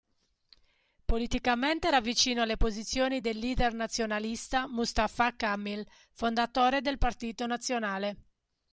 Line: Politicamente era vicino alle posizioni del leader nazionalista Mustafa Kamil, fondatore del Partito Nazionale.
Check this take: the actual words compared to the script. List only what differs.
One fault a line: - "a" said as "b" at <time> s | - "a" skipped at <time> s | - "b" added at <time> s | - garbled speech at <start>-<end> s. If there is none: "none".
none